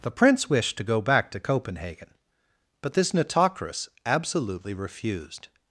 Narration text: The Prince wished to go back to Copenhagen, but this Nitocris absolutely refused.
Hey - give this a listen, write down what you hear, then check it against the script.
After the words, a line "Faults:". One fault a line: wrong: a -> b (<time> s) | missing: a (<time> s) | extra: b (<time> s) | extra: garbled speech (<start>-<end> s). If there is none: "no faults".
The Prince wished to go back to Copenhagen, but this Nitocris absolutely refused.
Faults:
no faults